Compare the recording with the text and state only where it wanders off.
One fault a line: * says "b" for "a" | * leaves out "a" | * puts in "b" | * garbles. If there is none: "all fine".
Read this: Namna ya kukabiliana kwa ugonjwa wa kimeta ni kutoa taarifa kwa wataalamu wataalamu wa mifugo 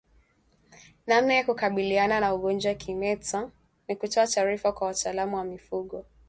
* says "na" for "kwa"
* leaves out "wataalamu"